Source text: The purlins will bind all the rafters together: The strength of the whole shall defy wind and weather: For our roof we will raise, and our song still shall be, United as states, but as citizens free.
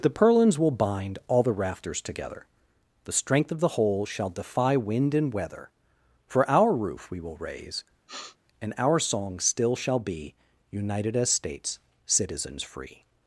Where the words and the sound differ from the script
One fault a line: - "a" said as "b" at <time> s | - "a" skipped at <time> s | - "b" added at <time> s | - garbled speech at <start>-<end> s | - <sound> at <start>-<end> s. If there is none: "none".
- sniff at 8.1-8.4 s
- "but as" skipped at 11.8 s